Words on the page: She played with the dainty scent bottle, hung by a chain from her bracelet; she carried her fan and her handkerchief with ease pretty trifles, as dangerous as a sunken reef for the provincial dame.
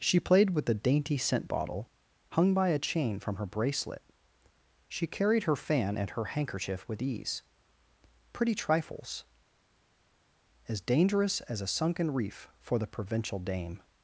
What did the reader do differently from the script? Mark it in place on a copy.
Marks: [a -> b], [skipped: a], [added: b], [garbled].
She played with the dainty scent bottle, hung by a chain from her bracelet; she carried her fan and her handkerchief with ease pretty trifles, as dangerous as a sunken reef for the provincial dame.